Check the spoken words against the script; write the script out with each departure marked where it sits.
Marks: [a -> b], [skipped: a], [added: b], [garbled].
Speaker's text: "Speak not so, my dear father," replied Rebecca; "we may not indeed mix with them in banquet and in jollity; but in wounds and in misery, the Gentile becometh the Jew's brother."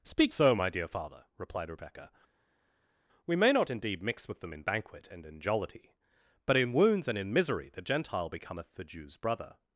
"Speak [skipped: not] so, my dear father," replied Rebecca; "we may not indeed mix with them in banquet and in jollity; but in wounds and in misery, the Gentile becometh the Jew's brother."